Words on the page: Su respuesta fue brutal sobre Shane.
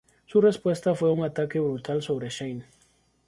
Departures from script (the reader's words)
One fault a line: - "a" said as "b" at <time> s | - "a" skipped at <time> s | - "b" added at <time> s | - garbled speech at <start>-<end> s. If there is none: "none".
- "un ataque" added at 1.1 s